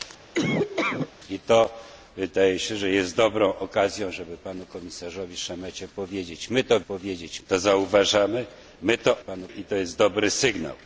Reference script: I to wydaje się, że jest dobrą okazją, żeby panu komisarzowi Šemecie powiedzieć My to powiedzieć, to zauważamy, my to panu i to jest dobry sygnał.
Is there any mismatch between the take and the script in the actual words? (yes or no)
no